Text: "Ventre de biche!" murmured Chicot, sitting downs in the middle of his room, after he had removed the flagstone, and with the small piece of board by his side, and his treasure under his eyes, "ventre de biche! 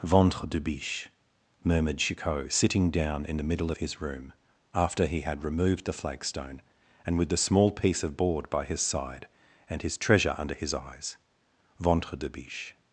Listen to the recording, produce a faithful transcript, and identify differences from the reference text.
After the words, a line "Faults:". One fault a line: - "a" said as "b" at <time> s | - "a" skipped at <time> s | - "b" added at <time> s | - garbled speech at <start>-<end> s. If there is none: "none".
"Ventre de biche!" murmured Chicot, sitting down in the middle of his room, after he had removed the flagstone, and with the small piece of board by his side, and his treasure under his eyes, "ventre de biche!
Faults:
- "downs" said as "down" at 2.9 s